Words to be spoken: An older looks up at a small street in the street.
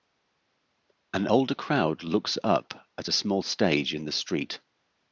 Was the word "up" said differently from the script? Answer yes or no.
no